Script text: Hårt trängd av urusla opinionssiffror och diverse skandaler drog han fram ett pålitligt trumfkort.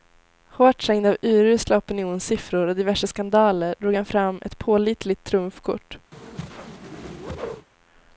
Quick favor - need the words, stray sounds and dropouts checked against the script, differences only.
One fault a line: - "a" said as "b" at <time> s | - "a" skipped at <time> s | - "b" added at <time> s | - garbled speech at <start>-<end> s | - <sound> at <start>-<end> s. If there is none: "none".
- whoosh at 6.1-7.7 s